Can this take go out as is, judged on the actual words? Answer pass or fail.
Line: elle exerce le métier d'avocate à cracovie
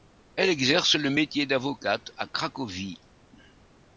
pass